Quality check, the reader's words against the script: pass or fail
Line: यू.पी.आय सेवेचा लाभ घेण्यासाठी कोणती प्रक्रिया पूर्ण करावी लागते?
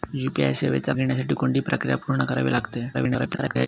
fail